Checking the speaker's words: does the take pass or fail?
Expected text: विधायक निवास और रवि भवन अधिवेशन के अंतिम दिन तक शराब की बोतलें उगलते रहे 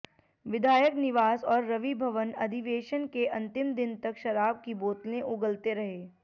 pass